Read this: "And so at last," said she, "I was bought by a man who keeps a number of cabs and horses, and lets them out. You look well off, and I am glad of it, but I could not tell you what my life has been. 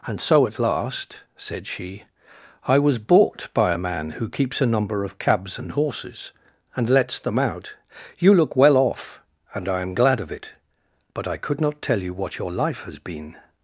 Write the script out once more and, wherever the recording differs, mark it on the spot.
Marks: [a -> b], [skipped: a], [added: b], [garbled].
"And so at last," said she, "I was bought by a man who keeps a number of cabs and horses, and lets them out. You look well off, and I am glad of it, but I could not tell you what [my -> your] life has been.